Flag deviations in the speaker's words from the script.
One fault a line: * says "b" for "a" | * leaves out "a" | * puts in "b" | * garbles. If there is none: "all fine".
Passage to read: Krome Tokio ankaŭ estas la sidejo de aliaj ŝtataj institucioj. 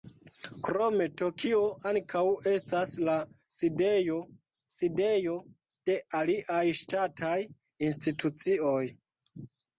* puts in "sidejo"